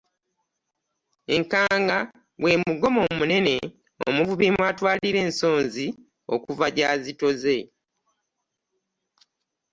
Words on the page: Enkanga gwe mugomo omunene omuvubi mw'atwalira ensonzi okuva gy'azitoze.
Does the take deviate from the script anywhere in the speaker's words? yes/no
no